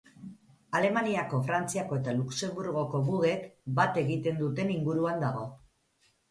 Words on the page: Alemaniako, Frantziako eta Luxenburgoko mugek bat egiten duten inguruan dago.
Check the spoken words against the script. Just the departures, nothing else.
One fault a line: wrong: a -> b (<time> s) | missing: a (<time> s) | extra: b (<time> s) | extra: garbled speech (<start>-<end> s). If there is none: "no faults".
no faults